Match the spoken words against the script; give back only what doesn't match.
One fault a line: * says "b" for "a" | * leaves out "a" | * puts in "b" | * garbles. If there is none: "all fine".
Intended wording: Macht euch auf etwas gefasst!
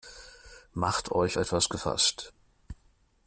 * leaves out "auf"